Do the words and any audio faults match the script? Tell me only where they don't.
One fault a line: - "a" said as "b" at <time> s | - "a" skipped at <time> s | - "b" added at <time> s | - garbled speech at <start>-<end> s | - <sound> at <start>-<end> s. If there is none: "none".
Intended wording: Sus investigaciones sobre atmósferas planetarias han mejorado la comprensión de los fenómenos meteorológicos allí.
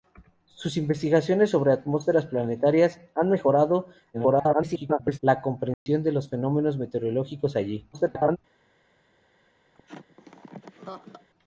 - garbled speech at 4.1-5.2 s
- dropout at 5.7-5.9 s
- garbled speech at 7.9-8.4 s
- laugh at 9.7-11.3 s